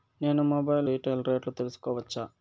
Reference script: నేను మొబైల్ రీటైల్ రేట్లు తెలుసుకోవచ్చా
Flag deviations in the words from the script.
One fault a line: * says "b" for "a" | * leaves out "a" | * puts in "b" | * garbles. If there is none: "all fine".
all fine